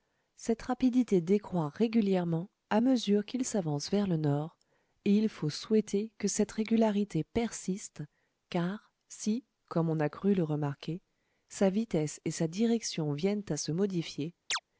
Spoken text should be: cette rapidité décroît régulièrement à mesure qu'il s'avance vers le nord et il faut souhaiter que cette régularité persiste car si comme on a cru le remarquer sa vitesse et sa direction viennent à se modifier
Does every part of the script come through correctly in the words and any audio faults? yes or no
no